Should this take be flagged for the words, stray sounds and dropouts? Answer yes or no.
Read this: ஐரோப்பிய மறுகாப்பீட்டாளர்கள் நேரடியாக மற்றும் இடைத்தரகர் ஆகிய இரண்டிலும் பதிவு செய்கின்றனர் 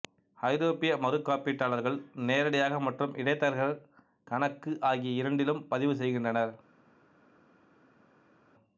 yes